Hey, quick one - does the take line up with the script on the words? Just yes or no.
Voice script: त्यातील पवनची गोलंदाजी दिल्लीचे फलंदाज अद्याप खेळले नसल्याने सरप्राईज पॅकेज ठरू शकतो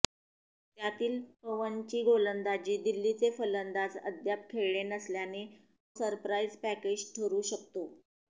yes